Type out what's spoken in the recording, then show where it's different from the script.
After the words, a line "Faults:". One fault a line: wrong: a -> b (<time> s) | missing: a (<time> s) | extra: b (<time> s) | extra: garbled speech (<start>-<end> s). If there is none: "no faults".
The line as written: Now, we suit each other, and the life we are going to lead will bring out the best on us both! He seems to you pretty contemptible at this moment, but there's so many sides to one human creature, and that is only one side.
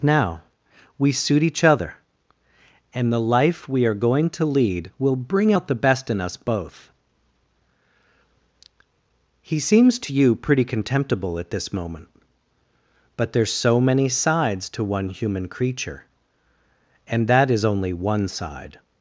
Now, we suit each other, and the life we are going to lead will bring out the best in us both! He seems to you pretty contemptible at this moment, but there's so many sides to one human creature, and that is only one side.
Faults:
wrong: on -> in (6.1 s)